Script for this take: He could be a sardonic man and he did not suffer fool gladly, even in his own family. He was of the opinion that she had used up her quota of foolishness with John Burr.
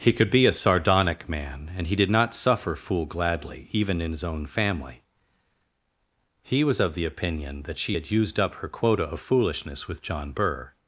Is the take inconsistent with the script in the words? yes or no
no